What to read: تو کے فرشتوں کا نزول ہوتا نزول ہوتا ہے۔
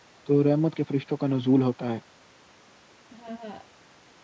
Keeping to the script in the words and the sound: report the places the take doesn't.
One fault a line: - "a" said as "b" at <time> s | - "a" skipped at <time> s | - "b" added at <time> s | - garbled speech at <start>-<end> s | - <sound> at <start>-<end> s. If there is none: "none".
- "رحمت" added at 0.4 s
- "نزول ہوتا" skipped at 1.9 s
- laugh at 3.1-3.7 s